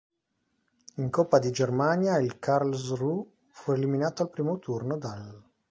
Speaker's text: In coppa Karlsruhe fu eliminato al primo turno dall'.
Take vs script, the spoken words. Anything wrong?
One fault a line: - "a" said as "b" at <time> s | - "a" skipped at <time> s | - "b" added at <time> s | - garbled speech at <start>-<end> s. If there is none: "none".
- "di Germania il" added at 1.4 s